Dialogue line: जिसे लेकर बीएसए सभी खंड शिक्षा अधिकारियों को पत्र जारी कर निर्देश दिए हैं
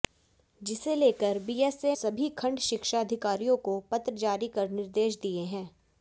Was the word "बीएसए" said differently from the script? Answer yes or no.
no